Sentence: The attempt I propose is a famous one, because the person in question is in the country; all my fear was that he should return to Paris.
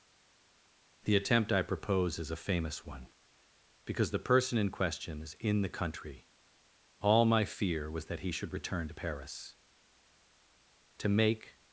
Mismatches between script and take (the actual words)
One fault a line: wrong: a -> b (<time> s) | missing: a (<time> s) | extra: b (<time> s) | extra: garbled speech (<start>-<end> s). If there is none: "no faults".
extra: To make (11.0 s)